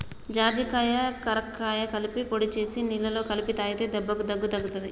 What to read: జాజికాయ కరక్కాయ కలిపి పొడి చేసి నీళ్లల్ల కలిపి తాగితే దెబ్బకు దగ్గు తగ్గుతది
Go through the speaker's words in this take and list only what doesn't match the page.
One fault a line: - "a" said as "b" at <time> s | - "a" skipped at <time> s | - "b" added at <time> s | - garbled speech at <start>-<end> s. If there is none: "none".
none